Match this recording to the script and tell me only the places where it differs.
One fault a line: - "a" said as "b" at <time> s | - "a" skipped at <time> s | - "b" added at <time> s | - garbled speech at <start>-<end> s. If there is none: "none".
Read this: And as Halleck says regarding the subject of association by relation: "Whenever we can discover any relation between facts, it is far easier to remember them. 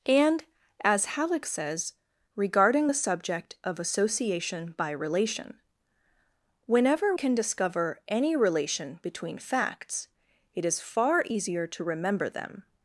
- "we" skipped at 7.2 s